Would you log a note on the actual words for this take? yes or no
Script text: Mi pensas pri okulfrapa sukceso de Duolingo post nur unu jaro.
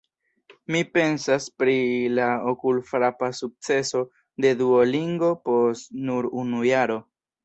yes